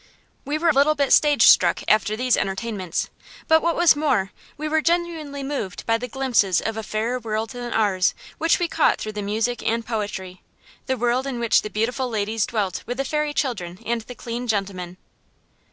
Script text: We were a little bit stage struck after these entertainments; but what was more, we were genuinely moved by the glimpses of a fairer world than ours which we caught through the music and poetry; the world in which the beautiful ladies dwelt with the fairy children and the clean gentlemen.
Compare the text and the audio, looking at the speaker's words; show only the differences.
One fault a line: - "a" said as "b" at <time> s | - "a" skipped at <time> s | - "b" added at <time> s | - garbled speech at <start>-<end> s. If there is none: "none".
none